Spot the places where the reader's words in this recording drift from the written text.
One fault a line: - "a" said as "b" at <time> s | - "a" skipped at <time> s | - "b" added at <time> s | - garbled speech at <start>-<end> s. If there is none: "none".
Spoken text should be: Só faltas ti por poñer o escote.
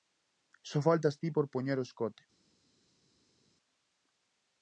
none